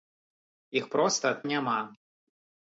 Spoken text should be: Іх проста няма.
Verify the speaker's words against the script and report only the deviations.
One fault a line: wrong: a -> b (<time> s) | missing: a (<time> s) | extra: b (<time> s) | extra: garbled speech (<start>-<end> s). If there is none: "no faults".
no faults